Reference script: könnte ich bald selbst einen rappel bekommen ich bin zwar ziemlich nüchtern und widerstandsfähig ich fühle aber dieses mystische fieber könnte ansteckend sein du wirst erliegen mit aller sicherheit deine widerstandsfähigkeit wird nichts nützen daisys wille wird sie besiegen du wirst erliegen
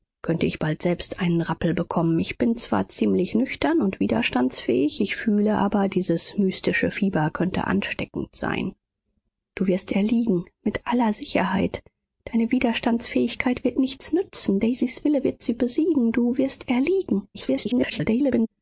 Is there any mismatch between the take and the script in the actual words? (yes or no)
yes